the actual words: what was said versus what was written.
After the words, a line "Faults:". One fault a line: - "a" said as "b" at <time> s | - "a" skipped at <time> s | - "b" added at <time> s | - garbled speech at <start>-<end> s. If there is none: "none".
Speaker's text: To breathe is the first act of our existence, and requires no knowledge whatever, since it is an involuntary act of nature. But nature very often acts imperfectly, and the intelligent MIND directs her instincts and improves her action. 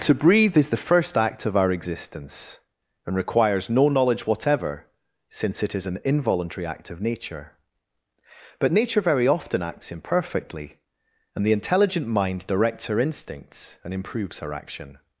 To breathe is the first act of our existence, and requires no knowledge whatever, since it is an involuntary act of nature. But nature very often acts imperfectly, and the intelligent MIND directs her instincts and improves her action.
Faults:
none